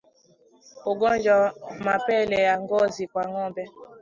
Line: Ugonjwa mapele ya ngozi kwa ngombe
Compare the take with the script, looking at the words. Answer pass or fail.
pass